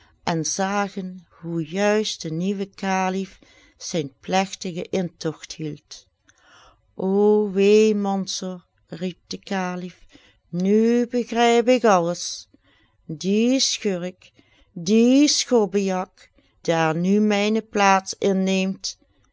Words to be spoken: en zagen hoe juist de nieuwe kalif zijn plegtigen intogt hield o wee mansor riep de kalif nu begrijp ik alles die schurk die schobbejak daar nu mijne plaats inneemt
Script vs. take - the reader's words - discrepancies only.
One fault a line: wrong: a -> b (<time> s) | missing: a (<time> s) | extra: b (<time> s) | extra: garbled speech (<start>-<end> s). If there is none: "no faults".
no faults